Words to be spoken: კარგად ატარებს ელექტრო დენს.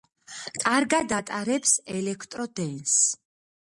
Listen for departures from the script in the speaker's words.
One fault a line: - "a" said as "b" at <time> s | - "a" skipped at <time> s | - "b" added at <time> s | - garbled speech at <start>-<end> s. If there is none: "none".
none